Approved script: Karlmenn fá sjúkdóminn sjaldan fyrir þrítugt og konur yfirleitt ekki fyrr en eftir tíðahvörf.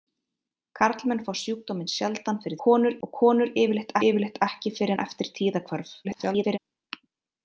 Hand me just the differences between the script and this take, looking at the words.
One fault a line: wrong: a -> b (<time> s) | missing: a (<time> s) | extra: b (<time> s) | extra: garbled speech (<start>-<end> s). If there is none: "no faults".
wrong: þrítugt -> konur (2.7 s)
extra: yfirleitt (4.1 s)
extra: garbled speech (6.0-6.6 s)